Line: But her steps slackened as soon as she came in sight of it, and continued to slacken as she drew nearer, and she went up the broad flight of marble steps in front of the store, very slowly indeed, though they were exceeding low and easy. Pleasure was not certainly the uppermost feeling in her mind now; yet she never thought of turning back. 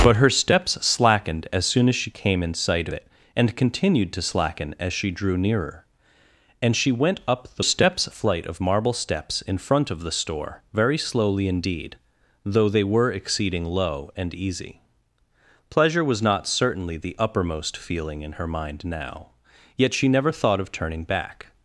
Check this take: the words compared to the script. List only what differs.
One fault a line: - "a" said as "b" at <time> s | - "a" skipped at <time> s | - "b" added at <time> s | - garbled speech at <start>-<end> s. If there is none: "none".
- "of" skipped at 2.9 s
- "broad" said as "steps" at 7.6 s